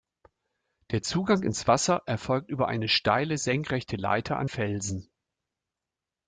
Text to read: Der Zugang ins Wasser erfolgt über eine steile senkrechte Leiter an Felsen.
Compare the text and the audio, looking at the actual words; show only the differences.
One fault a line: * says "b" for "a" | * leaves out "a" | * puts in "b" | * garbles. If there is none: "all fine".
all fine